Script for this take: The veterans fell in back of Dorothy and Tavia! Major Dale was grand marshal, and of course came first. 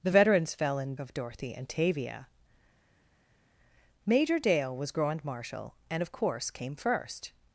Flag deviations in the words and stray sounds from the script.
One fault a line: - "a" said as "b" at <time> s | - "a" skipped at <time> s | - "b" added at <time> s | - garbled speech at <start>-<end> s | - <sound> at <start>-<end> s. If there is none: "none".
- "back" skipped at 0.9 s